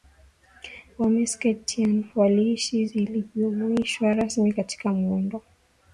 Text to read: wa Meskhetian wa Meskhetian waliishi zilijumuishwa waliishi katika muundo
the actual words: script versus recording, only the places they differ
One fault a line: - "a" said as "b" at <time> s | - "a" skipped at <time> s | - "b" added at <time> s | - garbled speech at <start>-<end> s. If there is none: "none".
- "wa Meskhetian" skipped at 2.0 s
- "waliishi" said as "rasmi" at 4.1 s